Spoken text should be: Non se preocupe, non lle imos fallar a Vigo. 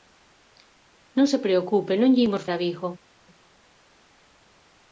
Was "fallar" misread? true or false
true